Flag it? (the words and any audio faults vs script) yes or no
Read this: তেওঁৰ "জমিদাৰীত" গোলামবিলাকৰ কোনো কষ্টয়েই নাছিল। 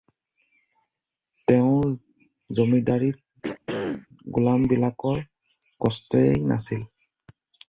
yes